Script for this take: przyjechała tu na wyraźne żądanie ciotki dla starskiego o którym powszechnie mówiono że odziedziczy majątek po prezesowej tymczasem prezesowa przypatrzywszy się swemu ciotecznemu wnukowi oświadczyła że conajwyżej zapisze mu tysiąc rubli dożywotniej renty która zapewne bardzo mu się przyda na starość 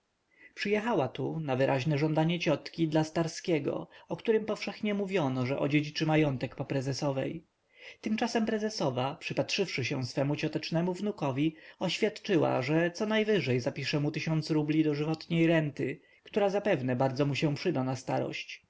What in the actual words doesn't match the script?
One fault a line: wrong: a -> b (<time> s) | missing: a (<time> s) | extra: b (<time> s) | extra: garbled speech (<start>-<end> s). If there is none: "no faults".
no faults